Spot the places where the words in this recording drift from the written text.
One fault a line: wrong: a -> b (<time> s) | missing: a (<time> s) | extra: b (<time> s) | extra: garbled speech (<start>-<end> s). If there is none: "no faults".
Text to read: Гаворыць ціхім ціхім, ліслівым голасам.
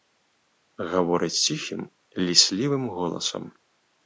missing: ціхім (1.8 s)